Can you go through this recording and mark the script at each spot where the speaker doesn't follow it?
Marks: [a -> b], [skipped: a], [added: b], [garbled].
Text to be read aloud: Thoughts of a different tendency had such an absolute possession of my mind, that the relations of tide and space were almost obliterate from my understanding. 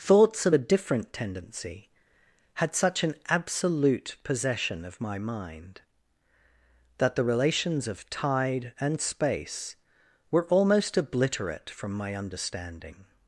Thoughts of a different tendency had such an absolute possession of my mind, that the relations of tide and space were almost obliterate from my understanding.